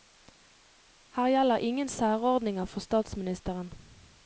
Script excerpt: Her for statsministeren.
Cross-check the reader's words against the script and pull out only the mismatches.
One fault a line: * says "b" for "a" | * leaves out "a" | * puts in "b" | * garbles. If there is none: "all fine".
* puts in "gjelder ingen særordninger"